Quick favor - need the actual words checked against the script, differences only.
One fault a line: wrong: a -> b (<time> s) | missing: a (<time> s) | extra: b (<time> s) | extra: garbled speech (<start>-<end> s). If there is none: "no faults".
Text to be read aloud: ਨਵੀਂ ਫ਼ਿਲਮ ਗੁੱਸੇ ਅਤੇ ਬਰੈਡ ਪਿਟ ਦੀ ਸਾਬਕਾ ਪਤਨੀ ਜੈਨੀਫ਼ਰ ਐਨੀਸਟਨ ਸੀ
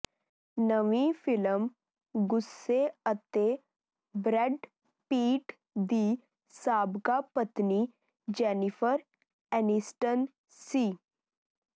no faults